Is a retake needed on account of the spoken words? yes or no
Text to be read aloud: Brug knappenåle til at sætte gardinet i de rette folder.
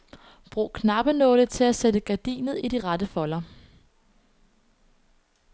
no